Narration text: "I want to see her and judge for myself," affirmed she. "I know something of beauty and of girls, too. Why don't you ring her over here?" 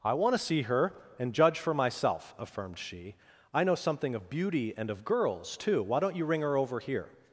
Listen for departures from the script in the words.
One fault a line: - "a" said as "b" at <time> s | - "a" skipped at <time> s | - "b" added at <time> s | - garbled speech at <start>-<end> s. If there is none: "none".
none